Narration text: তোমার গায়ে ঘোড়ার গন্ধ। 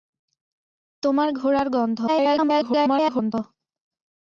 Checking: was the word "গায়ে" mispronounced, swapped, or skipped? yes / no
yes